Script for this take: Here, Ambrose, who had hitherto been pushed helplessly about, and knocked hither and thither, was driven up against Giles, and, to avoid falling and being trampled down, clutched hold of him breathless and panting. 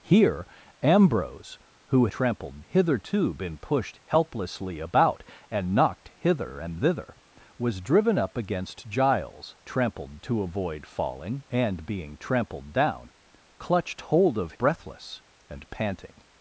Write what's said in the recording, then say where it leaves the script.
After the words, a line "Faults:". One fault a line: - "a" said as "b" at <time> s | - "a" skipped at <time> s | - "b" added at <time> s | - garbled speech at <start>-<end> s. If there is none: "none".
Here, Ambrose, who trampled hitherto been pushed helplessly about, and knocked hither and thither, was driven up against Giles, trampled, to avoid falling and being trampled down, clutched hold of breathless and panting.
Faults:
- "had" said as "trampled" at 2.1 s
- "and" said as "trampled" at 9.6 s
- "him" skipped at 14.5 s